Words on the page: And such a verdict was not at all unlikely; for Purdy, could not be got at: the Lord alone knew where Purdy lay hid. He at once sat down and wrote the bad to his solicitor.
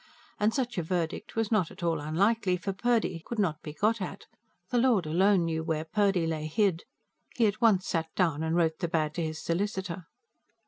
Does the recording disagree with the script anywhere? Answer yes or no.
no